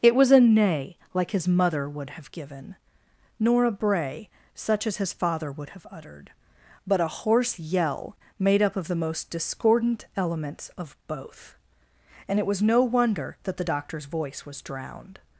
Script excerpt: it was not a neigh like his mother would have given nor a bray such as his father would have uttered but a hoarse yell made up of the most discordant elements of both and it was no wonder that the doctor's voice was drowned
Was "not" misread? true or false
true